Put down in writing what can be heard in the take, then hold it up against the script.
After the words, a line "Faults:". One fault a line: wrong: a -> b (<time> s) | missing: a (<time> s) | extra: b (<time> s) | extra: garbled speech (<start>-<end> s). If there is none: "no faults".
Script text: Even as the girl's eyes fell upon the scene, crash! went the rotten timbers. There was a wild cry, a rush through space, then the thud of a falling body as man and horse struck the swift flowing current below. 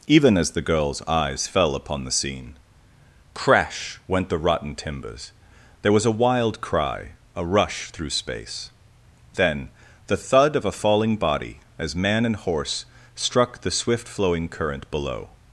Even as the girl's eyes fell upon the scene, crash! went the rotten timbers. There was a wild cry, a rush through space, then the thud of a falling body as man and horse struck the swift flowing current below.
Faults:
no faults